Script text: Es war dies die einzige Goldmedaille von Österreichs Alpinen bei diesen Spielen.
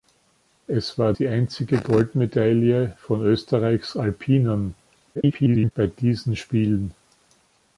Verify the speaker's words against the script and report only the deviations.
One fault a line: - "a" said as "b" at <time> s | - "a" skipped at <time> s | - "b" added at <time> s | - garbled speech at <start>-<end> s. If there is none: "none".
- "dies" skipped at 1.1 s
- garbled speech at 5.1-5.7 s